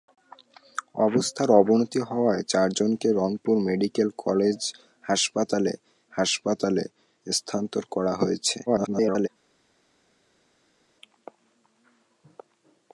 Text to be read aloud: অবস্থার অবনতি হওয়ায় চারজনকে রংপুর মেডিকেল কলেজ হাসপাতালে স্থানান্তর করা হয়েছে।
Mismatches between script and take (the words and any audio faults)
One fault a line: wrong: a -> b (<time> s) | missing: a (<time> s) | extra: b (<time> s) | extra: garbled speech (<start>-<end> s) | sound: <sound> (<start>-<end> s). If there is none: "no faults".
extra: হাসপাতালে (6.1 s)
extra: garbled speech (8.7-9.3 s)